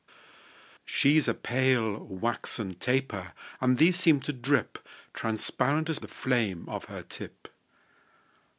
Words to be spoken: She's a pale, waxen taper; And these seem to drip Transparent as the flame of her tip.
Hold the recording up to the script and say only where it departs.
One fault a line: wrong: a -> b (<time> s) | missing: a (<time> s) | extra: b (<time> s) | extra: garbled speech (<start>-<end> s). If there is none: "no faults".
no faults